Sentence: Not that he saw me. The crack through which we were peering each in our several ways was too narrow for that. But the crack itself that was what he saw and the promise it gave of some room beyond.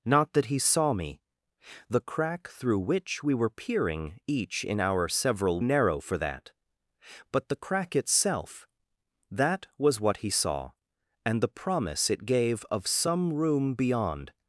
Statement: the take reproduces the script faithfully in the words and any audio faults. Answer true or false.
false